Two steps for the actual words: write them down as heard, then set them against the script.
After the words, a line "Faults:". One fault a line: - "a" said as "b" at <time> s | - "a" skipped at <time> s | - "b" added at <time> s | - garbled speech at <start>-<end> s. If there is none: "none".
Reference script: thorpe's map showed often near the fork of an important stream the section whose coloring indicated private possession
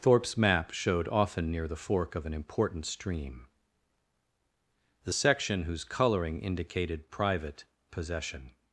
thorpe's map showed often near the fork of an important stream the section whose coloring indicated private possession
Faults:
none